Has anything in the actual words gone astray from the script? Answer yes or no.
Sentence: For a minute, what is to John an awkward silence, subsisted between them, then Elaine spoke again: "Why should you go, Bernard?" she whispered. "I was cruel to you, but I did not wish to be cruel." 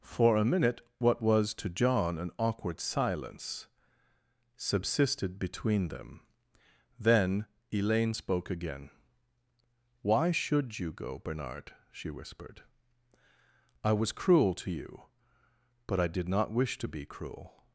yes